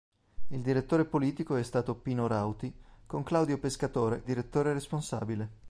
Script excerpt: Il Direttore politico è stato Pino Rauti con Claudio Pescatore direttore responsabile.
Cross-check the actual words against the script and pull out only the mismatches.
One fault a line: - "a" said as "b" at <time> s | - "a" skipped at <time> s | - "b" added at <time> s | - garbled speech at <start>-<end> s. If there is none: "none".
none